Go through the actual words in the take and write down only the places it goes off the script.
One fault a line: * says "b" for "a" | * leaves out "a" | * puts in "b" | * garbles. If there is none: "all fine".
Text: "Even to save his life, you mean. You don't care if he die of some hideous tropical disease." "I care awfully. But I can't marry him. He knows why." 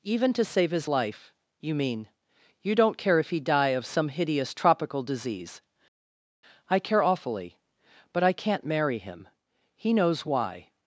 all fine